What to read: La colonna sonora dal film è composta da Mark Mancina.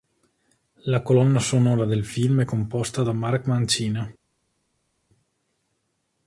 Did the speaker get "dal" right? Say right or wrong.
wrong